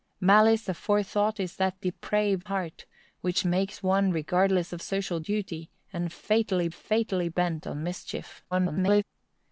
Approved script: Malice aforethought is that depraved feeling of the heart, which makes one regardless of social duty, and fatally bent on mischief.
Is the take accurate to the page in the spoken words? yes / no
no